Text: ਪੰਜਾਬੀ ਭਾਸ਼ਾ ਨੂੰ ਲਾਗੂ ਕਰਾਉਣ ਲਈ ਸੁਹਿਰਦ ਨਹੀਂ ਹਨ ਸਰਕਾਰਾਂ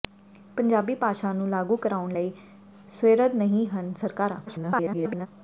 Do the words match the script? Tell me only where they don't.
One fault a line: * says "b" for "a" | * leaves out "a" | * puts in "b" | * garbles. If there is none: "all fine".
* garbles